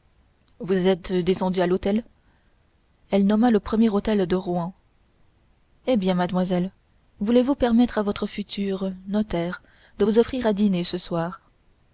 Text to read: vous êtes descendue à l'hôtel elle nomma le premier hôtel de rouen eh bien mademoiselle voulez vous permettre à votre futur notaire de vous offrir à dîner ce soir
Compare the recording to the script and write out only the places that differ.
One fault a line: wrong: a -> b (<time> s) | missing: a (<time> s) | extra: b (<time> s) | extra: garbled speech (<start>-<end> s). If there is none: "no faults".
no faults